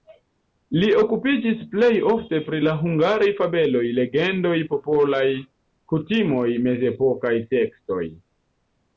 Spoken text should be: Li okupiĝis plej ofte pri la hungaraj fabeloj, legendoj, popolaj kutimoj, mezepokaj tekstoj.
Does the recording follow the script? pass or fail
pass